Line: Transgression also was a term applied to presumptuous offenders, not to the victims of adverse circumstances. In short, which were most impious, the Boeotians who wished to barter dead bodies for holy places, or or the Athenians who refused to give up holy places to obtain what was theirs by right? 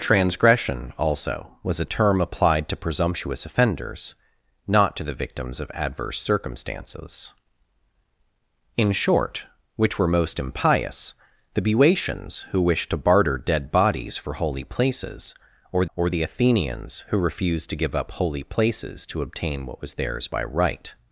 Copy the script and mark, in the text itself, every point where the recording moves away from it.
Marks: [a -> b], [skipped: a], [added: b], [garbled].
Transgression also was a term applied to presumptuous offenders, not to the victims of adverse circumstances. In short, which were most impious, the Boeotians who wished to barter dead bodies for holy places, or or the Athenians who refused to give up holy places to obtain what was theirs by right?